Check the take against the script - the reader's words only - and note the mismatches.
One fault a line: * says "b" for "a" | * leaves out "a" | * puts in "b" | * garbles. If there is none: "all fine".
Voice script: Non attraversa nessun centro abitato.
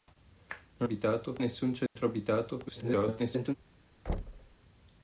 * says "abitato" for "attraversa"
* garbles